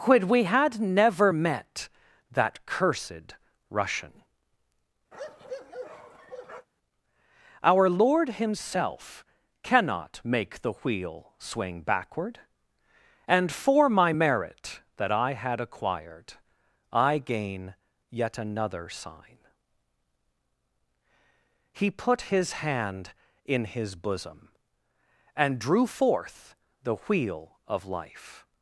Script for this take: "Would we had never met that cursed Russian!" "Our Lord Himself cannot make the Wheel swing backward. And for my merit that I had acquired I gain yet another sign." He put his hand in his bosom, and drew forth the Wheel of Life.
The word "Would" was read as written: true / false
false